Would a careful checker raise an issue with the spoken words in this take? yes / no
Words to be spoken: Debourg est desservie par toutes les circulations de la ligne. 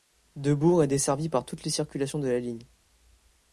no